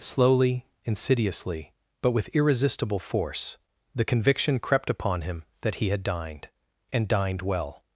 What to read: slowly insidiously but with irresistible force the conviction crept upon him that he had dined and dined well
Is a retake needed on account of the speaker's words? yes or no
no